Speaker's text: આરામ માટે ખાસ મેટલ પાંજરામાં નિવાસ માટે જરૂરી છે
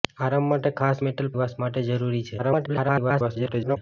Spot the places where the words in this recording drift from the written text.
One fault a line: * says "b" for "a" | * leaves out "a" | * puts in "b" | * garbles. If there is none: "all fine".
* leaves out "પાંજરામાં"
* garbles